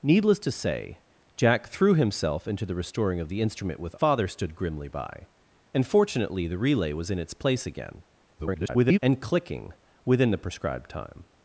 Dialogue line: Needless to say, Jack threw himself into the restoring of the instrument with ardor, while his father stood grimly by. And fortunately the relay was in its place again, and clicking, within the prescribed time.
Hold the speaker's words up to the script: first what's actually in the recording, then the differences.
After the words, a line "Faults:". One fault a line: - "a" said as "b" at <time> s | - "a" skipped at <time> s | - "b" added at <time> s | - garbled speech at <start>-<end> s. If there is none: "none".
Needless to say, Jack threw himself into the restoring of the instrument with father stood grimly by. And fortunately the relay was in its place again, [garbled] and clicking, within the prescribed time.
Faults:
- "ardor while his" skipped at 4.0 s
- garbled speech at 8.4-9.0 s